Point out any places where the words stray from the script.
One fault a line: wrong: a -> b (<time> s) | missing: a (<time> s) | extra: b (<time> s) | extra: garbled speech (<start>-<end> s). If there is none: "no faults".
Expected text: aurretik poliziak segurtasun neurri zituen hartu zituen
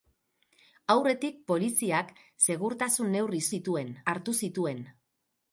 no faults